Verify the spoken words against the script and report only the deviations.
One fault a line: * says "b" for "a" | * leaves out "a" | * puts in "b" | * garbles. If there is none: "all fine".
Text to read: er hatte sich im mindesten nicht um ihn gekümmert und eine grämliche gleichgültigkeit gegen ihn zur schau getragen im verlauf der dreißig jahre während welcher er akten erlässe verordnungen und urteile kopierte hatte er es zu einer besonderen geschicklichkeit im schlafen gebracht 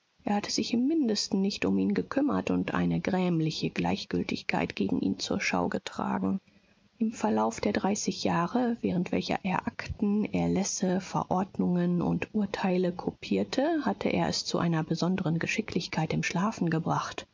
all fine